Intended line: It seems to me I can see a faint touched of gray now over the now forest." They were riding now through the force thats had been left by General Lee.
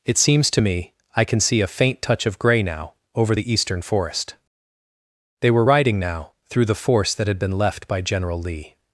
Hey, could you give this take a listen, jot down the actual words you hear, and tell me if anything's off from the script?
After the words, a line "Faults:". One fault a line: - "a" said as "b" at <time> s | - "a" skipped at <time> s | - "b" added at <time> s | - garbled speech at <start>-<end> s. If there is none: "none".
It seems to me I can see a faint touch of gray now over the eastern forest." They were riding now through the force that had been left by General Lee.
Faults:
- "touched" said as "touch" at 2.0 s
- "now" said as "eastern" at 3.5 s
- "thats" said as "that" at 7.1 s